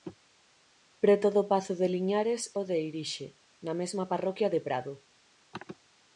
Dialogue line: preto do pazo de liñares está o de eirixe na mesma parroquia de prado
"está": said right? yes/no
no